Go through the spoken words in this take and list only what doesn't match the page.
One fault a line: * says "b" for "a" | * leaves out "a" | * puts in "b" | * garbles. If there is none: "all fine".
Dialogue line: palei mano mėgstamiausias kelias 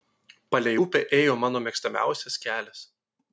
* puts in "upę ėjo"